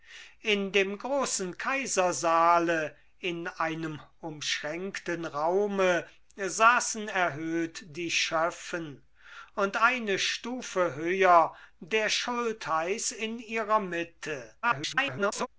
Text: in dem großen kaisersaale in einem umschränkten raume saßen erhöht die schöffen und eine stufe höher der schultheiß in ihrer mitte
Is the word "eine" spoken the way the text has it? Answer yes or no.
yes